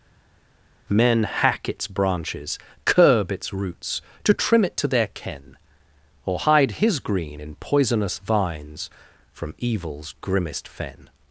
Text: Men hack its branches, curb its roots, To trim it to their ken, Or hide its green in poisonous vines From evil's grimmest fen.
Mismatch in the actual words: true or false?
true